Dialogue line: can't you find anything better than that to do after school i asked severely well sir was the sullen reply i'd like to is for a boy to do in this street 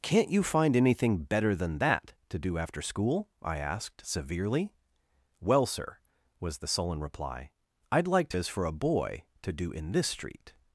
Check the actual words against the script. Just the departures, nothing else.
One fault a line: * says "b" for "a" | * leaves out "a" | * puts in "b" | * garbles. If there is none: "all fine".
all fine